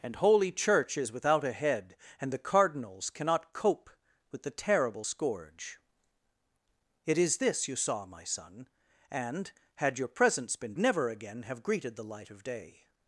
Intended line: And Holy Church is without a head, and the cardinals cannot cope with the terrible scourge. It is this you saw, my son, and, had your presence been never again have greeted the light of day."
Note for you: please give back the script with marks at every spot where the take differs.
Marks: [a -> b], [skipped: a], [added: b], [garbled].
And Holy Church is without a head, and the cardinals cannot cope with the terrible scourge. It is this you saw, my son, and, had your presence been never again have greeted the light of day."